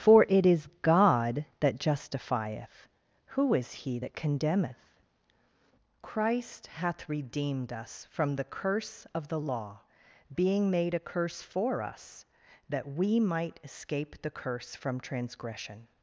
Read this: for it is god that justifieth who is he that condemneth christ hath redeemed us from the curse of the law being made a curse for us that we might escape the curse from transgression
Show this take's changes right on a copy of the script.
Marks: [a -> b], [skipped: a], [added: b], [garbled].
for it is god that justifieth who is he that condemneth christ hath redeemed us from the curse of the law being made a curse for us that we might escape the curse from transgression